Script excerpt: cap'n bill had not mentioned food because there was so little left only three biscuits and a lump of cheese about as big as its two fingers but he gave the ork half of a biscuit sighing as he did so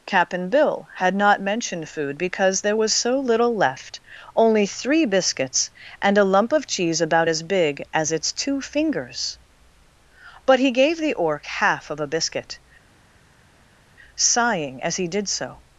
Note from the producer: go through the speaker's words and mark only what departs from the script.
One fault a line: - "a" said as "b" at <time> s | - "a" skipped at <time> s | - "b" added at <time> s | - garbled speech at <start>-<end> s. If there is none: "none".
none